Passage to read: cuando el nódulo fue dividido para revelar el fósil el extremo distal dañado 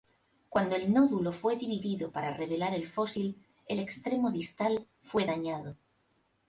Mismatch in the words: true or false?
true